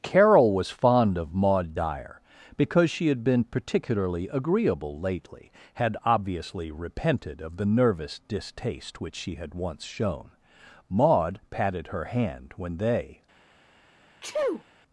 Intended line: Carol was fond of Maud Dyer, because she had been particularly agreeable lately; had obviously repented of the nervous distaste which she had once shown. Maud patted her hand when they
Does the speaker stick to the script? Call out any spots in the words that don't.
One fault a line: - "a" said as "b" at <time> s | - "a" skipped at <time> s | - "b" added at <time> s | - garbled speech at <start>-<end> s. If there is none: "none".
none